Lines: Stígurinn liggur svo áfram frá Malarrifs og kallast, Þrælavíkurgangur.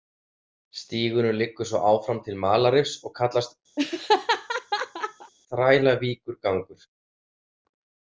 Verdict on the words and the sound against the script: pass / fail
fail